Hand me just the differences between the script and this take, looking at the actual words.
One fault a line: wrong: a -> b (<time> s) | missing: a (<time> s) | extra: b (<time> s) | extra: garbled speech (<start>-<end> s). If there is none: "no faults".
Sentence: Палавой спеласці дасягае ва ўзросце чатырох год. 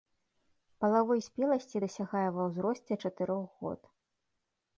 no faults